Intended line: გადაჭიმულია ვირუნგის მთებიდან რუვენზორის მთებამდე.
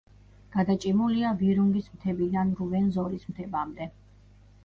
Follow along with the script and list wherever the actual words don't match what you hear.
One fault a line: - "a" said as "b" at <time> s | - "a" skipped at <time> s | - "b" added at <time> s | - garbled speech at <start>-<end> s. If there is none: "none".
none